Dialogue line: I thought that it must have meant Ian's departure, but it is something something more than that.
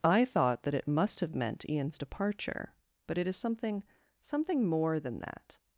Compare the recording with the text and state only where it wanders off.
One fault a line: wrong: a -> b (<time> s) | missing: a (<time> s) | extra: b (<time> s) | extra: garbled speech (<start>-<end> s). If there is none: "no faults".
no faults